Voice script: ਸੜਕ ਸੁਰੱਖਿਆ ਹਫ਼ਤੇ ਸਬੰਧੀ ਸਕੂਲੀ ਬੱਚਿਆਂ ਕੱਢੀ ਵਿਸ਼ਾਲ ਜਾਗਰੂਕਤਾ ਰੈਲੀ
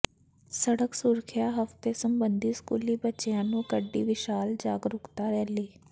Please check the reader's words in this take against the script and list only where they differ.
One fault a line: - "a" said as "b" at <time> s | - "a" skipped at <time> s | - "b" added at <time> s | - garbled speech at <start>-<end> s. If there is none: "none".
- "ਨੇ" added at 3.4 s